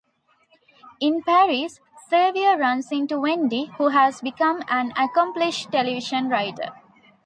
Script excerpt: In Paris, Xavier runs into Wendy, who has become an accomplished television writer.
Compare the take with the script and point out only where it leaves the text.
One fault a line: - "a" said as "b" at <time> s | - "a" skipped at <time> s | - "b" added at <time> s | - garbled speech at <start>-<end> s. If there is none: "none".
none